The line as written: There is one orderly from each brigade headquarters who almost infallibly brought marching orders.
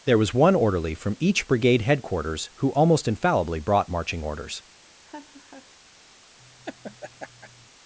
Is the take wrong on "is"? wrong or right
wrong